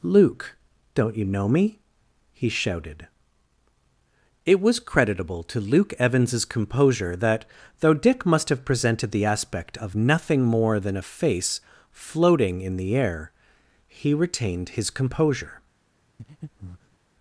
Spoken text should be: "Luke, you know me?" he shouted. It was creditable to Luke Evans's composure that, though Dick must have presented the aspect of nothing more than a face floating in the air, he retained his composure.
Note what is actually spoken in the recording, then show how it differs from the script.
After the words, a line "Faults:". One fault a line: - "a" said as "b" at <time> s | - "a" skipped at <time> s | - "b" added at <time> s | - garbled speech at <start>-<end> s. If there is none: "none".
"Luke, don't you know me?" he shouted. It was creditable to Luke Evans's composure that, though Dick must have presented the aspect of nothing more than a face floating in the air, he retained his composure.
Faults:
- "don't" added at 0.9 s